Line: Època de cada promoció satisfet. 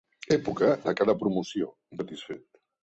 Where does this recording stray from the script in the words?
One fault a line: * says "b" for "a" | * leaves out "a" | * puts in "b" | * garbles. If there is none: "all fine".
all fine